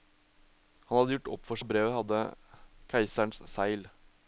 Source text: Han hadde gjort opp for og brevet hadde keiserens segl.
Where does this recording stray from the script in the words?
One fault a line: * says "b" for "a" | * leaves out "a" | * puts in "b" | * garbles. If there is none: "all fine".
all fine